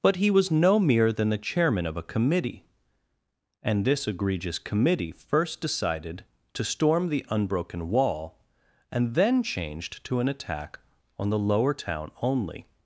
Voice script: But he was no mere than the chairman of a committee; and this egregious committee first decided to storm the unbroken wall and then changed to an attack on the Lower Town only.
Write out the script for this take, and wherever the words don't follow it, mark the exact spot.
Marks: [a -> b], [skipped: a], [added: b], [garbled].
But he was no mere than the chairman of a committee; and this egregious committee first decided to storm the unbroken wall and then changed to an attack on the Lower Town only.